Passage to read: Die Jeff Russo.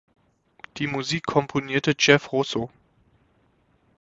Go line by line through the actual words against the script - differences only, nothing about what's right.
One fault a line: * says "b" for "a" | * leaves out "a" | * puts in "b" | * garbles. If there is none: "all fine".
* puts in "Musik komponierte"